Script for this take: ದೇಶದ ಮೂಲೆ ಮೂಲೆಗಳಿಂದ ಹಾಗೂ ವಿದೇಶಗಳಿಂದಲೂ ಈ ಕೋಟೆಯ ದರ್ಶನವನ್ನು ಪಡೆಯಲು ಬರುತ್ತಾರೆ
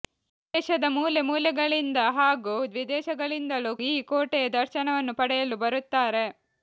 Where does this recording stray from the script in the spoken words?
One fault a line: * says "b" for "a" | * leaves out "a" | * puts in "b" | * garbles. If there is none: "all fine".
all fine